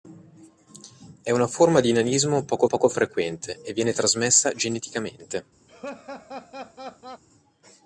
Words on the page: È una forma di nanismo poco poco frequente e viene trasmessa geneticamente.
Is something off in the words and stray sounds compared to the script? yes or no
yes